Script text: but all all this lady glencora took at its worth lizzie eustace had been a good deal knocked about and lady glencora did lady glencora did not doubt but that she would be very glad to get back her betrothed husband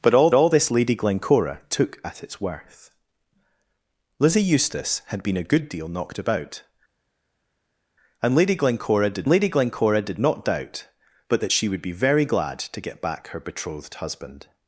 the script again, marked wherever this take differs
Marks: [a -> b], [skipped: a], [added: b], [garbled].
but all all this lady glencora took at its worth lizzie eustace had been a good deal knocked about and lady glencora did lady glencora did not doubt but that she would be very glad to get back her betrothed husband